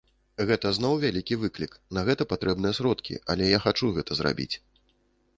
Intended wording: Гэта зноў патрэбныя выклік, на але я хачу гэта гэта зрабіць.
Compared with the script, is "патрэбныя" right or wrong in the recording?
wrong